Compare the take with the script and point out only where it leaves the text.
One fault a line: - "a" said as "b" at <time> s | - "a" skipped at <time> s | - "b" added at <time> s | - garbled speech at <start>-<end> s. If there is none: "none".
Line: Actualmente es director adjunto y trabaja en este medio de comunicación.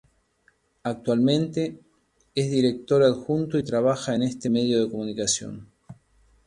none